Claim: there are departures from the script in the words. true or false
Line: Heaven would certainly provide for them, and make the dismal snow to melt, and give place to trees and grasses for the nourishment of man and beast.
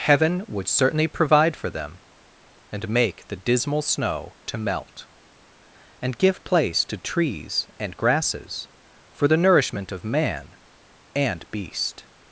false